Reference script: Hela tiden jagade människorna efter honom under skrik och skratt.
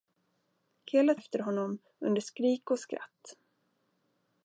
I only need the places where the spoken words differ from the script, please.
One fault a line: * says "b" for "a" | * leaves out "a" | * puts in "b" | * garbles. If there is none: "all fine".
* leaves out "tiden jagade människorna"